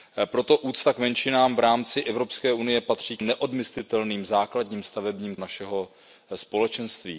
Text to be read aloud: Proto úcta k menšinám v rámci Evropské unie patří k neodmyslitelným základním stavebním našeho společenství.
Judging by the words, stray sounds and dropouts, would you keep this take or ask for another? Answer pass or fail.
pass